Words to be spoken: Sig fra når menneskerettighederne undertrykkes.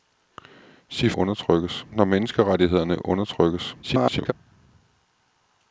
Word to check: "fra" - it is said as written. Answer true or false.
false